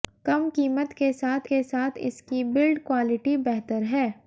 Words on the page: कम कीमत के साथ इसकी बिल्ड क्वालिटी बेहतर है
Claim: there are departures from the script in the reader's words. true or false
true